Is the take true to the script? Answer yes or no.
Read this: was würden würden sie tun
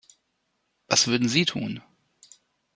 no